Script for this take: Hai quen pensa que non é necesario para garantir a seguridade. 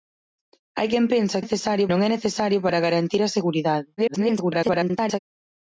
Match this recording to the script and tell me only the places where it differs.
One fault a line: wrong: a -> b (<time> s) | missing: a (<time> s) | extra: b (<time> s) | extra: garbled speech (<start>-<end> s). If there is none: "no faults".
wrong: que -> necesario (1.4 s)
extra: garbled speech (4.0-5.2 s)